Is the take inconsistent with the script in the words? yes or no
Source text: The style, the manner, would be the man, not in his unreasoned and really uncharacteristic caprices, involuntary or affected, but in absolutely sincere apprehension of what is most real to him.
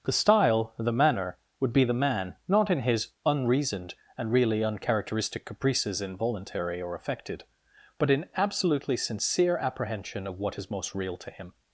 no